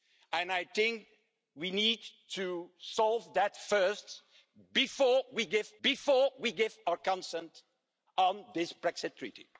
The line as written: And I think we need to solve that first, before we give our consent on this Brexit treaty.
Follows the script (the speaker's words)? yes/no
no